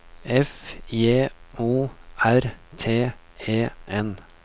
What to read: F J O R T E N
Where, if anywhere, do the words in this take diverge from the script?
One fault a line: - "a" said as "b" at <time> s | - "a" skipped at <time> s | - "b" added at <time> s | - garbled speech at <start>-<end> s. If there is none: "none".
none